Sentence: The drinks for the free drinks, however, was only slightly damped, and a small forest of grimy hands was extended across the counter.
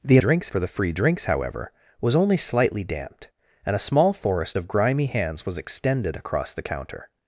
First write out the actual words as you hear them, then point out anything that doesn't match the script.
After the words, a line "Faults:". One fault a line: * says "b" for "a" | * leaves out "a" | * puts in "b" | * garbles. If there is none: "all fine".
The drinks for the free drinks, however, was only slightly damped, and a small forest of grimy hands was extended across the counter.
Faults:
all fine